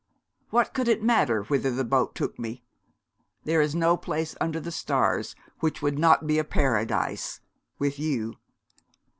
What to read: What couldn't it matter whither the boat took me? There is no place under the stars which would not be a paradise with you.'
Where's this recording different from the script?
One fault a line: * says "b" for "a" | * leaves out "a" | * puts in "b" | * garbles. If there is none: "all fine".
* says "could" for "couldn't"